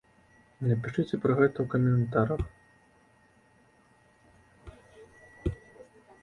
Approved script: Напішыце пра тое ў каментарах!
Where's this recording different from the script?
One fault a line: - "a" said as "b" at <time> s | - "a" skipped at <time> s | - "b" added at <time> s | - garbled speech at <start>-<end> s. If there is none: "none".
- "тое" said as "гэта" at 1.4 s